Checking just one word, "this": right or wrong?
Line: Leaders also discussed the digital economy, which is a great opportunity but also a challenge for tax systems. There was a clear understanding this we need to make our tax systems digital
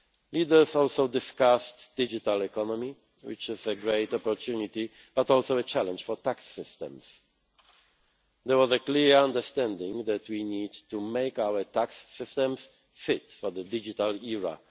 wrong